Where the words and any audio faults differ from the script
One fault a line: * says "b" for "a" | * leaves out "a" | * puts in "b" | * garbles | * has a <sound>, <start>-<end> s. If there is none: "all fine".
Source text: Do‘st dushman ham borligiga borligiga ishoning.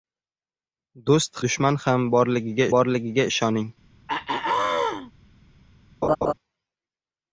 * has a throat clearing, 4.1-5.1 s
* has a laugh, 6.0-6.3 s